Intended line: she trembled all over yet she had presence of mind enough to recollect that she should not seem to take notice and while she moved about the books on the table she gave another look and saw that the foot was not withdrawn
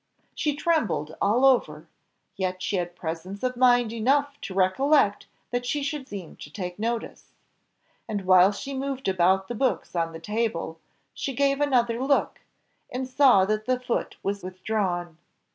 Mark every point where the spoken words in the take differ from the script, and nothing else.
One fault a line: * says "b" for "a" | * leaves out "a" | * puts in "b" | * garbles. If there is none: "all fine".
* leaves out "not"
* leaves out "not"